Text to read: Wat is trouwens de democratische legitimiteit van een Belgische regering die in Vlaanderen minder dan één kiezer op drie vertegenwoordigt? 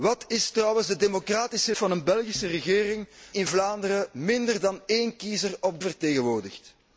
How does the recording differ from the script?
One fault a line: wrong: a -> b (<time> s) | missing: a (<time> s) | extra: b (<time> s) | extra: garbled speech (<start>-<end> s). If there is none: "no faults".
missing: legitimiteit (1.8 s)
missing: die (3.1 s)
missing: drie (5.8 s)